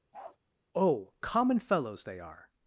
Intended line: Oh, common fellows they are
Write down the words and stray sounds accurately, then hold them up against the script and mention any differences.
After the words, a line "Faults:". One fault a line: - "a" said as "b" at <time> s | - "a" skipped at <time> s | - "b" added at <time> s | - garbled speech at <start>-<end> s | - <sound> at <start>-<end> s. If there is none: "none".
Oh, common fellows they are
Faults:
- bark at 0.1-0.4 s